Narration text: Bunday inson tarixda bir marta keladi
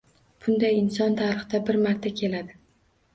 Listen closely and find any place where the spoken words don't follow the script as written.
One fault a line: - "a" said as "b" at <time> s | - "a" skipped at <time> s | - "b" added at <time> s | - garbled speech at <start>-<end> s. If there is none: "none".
none